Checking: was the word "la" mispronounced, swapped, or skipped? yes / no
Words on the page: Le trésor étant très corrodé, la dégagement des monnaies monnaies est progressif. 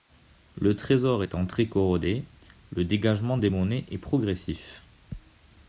yes